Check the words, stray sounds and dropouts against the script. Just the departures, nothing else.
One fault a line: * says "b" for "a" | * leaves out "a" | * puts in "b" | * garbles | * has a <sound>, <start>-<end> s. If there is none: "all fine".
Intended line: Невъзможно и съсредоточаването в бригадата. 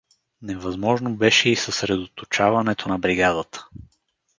* puts in "беше"
* says "на" for "в"